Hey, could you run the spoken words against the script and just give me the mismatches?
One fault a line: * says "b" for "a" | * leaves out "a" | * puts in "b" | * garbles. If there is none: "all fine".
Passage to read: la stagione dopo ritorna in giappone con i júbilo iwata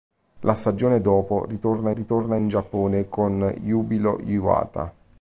* puts in "ritorna"
* leaves out "i"